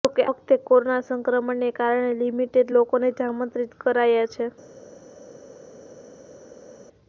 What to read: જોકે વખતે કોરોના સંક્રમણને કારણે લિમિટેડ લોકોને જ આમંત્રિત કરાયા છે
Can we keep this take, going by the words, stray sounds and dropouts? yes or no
yes